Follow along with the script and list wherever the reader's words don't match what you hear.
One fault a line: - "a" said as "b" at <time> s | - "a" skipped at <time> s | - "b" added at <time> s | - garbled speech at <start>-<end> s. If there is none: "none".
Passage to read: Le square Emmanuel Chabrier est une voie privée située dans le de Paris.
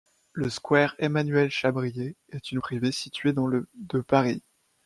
- "voie" skipped at 2.6 s